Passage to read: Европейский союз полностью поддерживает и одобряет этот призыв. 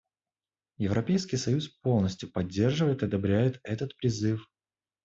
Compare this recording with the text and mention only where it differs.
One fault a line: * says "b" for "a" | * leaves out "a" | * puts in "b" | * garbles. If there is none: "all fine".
all fine